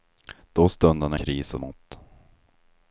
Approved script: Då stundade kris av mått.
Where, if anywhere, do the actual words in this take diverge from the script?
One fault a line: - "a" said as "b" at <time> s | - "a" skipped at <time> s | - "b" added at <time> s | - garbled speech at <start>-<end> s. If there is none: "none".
none